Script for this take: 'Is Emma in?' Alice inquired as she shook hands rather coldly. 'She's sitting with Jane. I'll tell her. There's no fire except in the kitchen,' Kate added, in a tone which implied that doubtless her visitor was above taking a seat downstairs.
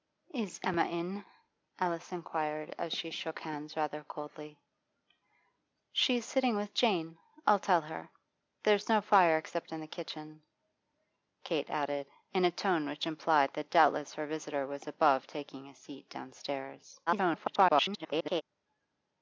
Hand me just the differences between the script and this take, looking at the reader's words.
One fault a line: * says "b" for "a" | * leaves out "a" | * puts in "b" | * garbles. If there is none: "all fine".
* garbles